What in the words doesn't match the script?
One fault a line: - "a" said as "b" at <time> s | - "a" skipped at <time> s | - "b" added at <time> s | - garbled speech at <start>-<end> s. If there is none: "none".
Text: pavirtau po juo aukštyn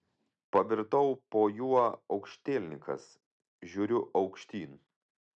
- "aukštielninkas žiūriu" added at 2.1 s